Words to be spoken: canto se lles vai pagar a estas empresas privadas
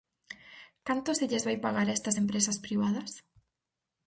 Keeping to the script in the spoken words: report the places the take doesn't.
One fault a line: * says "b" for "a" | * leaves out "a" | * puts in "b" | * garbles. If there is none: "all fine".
all fine